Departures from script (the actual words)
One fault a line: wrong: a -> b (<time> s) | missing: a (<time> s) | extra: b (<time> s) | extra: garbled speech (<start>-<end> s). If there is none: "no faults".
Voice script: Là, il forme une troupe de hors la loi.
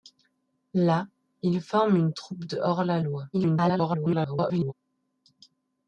extra: garbled speech (3.3-4.7 s)